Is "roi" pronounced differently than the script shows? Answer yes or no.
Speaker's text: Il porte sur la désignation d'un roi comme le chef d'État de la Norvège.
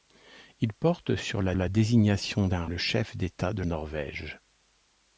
yes